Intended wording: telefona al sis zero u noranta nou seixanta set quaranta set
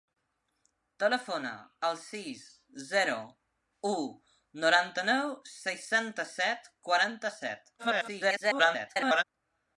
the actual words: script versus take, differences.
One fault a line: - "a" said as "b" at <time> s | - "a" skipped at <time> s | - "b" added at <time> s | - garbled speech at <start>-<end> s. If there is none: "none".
- garbled speech at 7.8-9.2 s